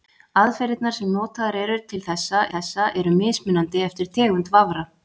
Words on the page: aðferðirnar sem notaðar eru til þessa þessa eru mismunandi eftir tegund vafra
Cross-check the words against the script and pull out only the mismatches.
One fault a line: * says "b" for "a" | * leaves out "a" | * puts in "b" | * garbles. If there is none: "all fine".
all fine